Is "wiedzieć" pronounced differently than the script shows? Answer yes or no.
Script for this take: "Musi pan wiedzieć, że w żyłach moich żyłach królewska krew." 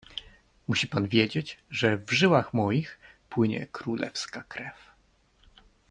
no